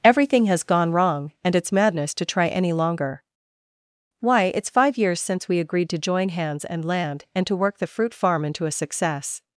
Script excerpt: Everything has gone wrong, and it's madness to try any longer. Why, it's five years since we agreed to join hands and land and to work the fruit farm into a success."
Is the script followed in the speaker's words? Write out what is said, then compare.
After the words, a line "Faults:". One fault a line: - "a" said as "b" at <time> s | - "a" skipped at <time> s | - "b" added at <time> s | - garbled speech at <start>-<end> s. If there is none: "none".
Everything has gone wrong, and it's madness to try any longer. Why, it's five years since we agreed to join hands and land and to work the fruit farm into a success."
Faults:
none